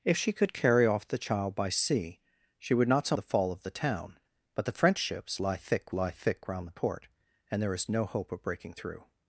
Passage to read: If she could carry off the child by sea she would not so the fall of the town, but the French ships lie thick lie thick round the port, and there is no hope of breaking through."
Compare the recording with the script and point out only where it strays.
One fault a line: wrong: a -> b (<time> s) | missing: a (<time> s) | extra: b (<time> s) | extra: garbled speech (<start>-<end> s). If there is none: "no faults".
no faults